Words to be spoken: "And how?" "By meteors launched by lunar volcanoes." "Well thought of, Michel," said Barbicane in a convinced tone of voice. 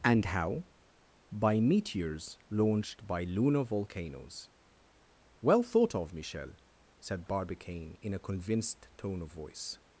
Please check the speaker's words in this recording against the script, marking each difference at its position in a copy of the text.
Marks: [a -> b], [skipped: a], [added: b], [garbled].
"And how?" "By meteors launched by lunar volcanoes." "Well thought of, Michel," said Barbicane in a convinced tone of voice.